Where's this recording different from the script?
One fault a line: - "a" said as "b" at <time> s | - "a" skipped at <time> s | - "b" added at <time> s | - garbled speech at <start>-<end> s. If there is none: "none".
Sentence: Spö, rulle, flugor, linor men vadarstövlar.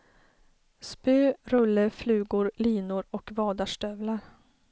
- "men" said as "och" at 3.1 s